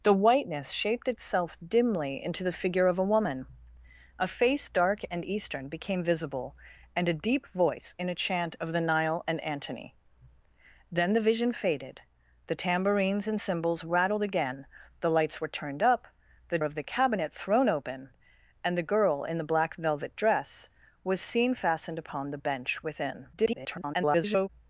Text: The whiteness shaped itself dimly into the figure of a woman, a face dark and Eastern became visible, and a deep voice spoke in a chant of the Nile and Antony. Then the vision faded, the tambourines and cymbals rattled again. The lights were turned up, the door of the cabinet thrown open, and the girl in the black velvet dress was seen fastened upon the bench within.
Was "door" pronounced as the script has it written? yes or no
no